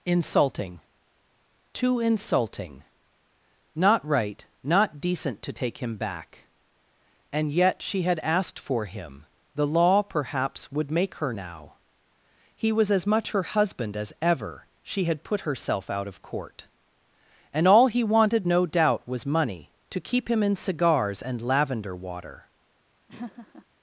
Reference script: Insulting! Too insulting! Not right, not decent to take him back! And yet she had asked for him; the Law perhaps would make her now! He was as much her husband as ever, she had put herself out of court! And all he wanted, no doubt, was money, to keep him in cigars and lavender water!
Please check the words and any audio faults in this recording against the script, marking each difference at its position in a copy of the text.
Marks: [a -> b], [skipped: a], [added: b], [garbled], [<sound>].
Insulting! Too insulting! Not right, not decent to take him back! And yet she had asked for him; the Law perhaps would make her now! He was as much her husband as ever, she had put herself out of court! And all he wanted, no doubt, was money, to keep him in cigars and lavender water! [laugh]